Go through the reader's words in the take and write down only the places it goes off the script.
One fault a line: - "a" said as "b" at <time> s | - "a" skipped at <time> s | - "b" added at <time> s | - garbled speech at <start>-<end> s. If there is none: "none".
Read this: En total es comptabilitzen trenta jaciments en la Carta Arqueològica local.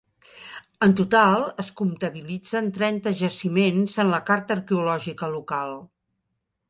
none